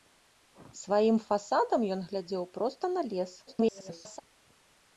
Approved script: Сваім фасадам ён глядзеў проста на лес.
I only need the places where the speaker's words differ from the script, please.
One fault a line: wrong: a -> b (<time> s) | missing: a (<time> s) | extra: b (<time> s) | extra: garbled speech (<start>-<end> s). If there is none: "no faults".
extra: garbled speech (3.5-4.2 s)